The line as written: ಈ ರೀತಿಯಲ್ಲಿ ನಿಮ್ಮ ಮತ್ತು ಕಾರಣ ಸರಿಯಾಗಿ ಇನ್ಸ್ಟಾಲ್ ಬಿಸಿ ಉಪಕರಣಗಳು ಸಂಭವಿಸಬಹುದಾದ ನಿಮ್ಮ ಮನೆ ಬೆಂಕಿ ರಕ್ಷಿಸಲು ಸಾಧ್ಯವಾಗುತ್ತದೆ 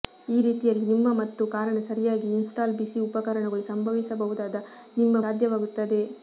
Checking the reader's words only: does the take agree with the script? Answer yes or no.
no